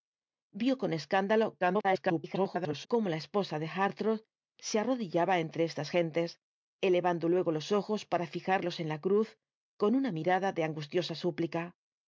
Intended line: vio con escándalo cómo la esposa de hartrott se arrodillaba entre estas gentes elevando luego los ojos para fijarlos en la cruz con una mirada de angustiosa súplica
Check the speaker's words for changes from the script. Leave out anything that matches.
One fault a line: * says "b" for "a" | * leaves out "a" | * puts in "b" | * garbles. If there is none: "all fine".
* garbles